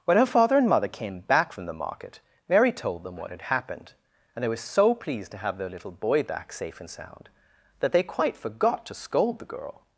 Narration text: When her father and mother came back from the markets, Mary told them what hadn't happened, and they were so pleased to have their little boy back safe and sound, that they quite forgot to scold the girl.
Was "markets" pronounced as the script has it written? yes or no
no